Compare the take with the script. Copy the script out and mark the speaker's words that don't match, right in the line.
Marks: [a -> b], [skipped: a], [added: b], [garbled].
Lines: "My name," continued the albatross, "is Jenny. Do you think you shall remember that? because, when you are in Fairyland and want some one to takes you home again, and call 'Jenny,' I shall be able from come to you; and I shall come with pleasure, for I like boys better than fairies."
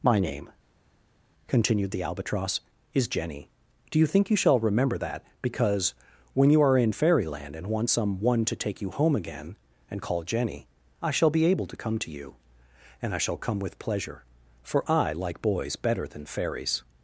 "My name," continued the albatross, "is Jenny. Do you think you shall remember that? because, when you are in Fairyland and want some one to [takes -> take] you home again, and call 'Jenny,' I shall be able [from -> to] come to you; and I shall come with pleasure, for I like boys better than fairies."